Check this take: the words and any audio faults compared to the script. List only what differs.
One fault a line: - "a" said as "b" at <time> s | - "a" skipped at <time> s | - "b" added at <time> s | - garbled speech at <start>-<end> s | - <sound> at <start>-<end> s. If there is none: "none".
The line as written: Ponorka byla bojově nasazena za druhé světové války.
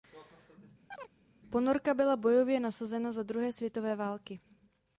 - chirp at 0.9-1.1 s